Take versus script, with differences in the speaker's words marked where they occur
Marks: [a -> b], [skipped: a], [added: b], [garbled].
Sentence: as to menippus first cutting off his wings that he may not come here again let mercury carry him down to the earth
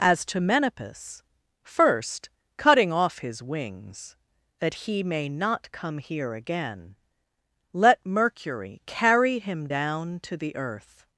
as to menippus first cutting off his wings that he may not come here again let mercury carry him down to the earth